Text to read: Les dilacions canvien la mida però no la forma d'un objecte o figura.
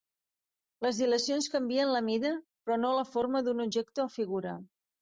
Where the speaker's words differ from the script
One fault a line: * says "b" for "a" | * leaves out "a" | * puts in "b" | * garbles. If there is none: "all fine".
all fine